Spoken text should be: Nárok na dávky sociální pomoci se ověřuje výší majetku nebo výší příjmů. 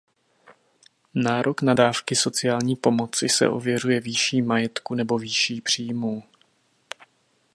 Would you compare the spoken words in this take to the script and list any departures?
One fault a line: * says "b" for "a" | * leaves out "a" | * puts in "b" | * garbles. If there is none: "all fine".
all fine